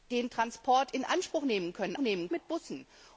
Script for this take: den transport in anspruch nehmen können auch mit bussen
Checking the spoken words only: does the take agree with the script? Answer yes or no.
no